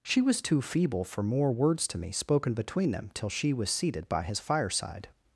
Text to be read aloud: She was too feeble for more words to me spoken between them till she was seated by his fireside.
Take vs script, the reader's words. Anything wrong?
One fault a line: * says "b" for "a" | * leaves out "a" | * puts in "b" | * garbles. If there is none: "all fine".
all fine